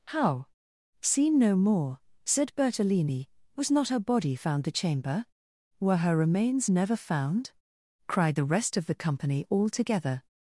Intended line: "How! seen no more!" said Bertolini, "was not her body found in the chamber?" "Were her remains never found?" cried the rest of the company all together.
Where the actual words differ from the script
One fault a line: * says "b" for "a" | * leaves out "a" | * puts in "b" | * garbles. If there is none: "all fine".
* leaves out "in"